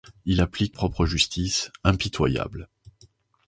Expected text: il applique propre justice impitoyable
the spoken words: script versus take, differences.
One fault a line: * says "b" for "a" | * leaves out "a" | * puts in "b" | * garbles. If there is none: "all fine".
all fine